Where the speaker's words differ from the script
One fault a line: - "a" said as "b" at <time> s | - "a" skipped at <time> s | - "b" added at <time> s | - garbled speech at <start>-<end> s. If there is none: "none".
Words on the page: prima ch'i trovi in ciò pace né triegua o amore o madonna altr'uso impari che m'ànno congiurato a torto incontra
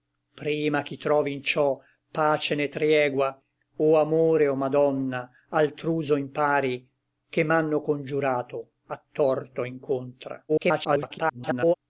- garbled speech at 10.5-11.7 s